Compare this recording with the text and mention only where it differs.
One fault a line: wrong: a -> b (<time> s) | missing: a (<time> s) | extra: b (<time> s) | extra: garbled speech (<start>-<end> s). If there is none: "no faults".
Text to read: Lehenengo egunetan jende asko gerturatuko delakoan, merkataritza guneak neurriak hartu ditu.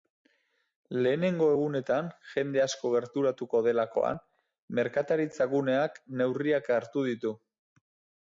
no faults